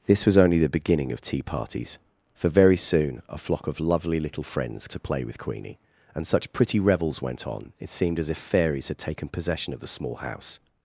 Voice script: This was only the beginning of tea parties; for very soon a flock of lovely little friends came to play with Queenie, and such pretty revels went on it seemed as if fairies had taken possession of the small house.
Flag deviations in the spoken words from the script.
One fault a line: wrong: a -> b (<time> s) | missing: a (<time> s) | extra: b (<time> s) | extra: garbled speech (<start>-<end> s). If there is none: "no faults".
missing: came (4.9 s)